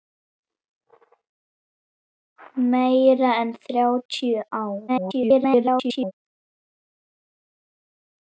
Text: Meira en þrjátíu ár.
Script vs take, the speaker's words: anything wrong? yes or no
yes